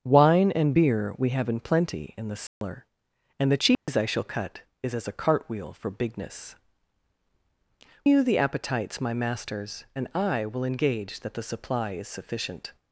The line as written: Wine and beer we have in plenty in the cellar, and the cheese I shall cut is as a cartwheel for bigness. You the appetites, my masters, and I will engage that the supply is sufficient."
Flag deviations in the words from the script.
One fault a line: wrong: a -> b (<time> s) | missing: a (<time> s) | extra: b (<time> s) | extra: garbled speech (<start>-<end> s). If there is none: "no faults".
no faults